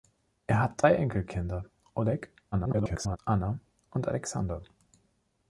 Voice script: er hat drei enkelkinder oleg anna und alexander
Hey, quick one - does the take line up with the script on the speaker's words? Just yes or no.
no